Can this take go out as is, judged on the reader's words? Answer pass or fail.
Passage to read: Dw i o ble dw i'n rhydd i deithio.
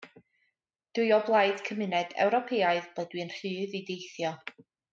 fail